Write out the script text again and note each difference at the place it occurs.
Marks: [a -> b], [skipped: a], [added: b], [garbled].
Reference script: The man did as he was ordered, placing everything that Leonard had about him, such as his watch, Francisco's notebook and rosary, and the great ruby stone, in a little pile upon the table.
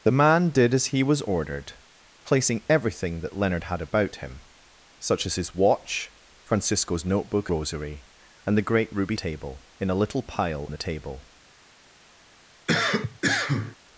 The man did as he was ordered, placing everything that Leonard had about him, such as his watch, Francisco's notebook [skipped: and] rosary, and the great ruby [stone, -> table] in a little pile [skipped: upon] the table.